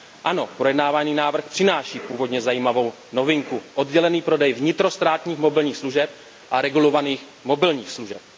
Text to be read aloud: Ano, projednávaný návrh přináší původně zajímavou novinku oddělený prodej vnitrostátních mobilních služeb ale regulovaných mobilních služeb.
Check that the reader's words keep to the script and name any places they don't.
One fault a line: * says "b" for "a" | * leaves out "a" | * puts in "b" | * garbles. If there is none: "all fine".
* says "a" for "ale"